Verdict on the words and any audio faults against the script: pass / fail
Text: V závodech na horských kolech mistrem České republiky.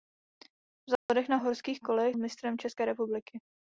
fail